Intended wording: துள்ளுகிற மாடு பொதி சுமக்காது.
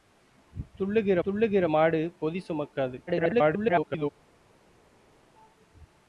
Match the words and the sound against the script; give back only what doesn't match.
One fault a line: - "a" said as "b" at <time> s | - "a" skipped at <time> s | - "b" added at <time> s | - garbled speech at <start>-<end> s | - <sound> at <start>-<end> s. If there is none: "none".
- "துள்ளுகிற" added at 1.3 s
- garbled speech at 3.1-4.1 s